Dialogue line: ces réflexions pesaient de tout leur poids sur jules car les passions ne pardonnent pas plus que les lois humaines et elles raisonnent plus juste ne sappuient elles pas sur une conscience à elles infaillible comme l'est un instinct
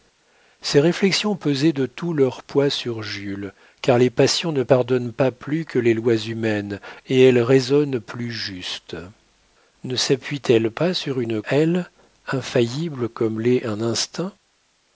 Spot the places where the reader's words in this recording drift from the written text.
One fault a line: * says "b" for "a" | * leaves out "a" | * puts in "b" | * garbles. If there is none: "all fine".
* leaves out "conscience à"